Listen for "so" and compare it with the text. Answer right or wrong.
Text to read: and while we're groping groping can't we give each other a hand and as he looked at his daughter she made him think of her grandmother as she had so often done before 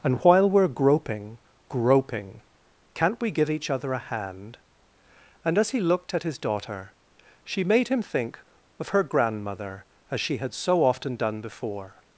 right